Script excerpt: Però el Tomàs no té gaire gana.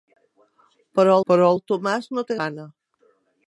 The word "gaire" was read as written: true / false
false